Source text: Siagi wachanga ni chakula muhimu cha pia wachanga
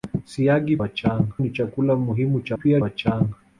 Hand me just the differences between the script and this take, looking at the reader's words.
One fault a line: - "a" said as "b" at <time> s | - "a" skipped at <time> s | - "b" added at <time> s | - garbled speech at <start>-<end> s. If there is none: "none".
none